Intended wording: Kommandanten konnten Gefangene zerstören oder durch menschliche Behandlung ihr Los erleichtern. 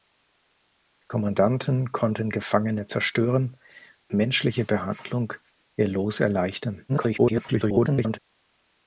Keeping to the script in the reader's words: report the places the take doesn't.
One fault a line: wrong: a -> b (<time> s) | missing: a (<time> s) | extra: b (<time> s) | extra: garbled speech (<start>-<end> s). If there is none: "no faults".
missing: oder durch (3.5 s)
extra: garbled speech (6.9-8.2 s)